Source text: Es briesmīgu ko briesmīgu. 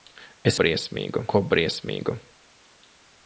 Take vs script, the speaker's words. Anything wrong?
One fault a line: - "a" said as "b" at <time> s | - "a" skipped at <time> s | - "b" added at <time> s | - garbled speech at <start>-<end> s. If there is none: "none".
none